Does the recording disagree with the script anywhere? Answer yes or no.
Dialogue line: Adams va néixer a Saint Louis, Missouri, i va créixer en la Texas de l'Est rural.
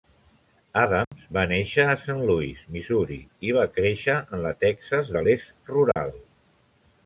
no